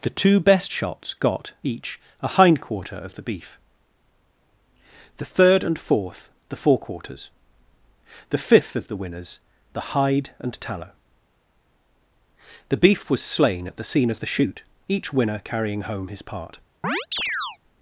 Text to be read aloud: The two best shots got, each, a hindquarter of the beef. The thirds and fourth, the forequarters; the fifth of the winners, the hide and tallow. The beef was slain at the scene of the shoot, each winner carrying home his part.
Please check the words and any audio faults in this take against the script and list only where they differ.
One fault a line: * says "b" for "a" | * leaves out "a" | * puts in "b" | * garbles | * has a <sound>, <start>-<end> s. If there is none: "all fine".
* says "third" for "thirds"
* has a chirp, 16.8-17.6 s